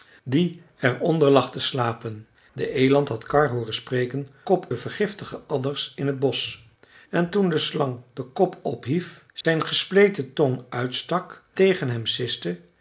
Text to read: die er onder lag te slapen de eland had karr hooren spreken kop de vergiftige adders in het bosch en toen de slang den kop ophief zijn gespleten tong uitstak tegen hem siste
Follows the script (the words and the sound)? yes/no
no